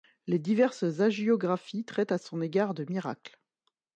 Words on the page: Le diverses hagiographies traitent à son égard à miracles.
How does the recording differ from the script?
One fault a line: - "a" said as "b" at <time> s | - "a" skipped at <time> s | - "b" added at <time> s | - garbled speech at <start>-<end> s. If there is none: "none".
- "Le" said as "Les" at 0.2 s
- "à" said as "de" at 2.7 s